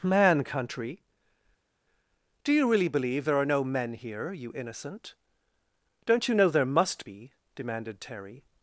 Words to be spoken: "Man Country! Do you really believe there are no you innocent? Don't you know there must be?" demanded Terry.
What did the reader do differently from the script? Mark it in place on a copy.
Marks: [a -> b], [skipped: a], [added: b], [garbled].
"Man Country! Do you really believe there are no [added: men here] you innocent? Don't you know there must be?" demanded Terry.